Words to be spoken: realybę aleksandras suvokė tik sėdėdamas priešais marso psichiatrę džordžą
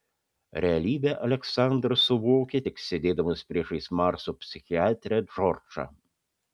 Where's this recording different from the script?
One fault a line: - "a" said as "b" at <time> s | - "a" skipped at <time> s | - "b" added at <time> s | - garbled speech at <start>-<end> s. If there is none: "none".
none